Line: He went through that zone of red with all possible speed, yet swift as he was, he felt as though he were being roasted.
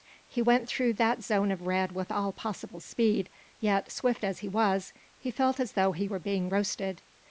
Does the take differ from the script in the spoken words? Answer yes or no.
no